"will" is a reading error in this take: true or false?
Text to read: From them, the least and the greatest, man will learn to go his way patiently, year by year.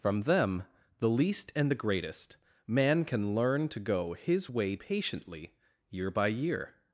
true